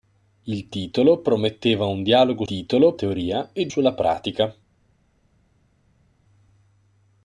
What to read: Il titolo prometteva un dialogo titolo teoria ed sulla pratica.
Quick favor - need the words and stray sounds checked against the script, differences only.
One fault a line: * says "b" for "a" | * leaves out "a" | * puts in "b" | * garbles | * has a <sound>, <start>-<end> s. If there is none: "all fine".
all fine